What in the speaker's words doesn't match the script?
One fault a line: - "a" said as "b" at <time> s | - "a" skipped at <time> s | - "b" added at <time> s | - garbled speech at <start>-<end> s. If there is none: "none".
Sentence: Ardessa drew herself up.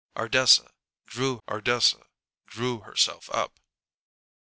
- "ardessa drew" added at 1.5 s